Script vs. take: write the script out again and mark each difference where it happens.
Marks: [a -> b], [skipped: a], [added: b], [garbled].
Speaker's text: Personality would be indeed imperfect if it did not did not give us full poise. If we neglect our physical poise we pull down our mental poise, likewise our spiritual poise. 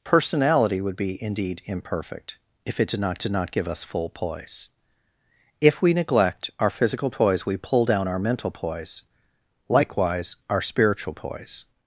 Personality would be indeed imperfect if it did not did not give us full poise. If we neglect our physical poise we pull down our mental poise, likewise our spiritual poise.